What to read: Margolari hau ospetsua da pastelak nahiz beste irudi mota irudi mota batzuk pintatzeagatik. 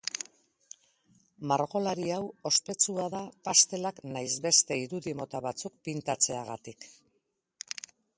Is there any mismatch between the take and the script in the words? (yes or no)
yes